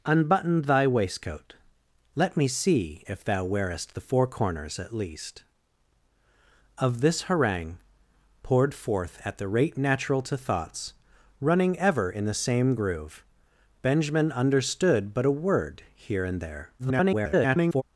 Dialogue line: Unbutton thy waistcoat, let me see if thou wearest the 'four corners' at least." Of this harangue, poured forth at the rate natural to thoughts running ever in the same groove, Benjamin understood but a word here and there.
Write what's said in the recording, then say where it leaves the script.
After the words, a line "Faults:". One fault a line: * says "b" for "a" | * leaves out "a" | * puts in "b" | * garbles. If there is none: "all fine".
Unbutton thy waistcoat, let me see if thou wearest the 'four corners' at least." Of this harangue, poured forth at the rate natural to thoughts running ever in the same groove, Benjamin understood but a word here and there. [garbled]
Faults:
* garbles